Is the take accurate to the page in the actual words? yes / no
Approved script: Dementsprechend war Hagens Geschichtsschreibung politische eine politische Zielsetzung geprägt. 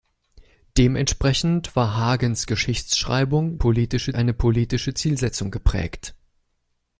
yes